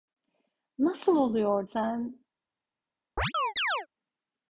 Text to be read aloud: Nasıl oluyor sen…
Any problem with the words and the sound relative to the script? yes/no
yes